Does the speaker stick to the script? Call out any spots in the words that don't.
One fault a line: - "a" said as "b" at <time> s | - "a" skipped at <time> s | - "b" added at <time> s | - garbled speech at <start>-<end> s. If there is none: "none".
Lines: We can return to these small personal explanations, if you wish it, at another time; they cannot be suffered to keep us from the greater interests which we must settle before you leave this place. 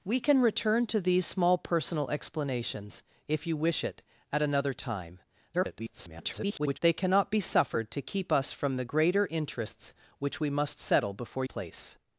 - garbled speech at 5.5-6.8 s
- "you leave this" skipped at 11.4 s